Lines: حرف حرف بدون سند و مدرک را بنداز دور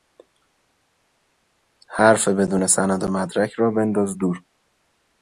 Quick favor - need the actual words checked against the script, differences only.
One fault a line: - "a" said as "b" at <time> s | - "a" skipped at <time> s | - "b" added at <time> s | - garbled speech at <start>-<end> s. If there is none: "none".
- "حرف" skipped at 2.3 s